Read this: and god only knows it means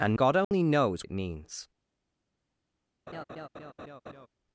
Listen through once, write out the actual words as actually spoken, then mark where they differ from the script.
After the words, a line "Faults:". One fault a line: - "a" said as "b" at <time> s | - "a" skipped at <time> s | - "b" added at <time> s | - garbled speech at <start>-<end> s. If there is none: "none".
and god only knows it means
Faults:
none